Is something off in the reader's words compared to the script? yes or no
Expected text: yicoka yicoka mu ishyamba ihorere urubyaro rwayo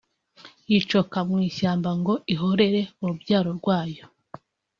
yes